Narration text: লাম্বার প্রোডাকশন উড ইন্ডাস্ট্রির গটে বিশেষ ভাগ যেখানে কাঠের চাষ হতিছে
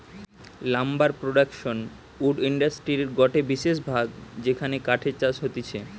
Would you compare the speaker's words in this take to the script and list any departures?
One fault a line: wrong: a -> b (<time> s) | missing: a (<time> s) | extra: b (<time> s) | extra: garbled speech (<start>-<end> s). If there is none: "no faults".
no faults